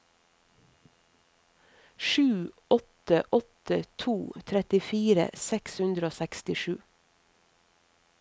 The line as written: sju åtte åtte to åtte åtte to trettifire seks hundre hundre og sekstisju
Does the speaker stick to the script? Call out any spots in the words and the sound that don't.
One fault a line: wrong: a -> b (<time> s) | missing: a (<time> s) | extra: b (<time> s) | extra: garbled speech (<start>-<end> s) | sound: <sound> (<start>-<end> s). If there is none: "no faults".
missing: åtte åtte to (4.1 s)
missing: hundre (6.1 s)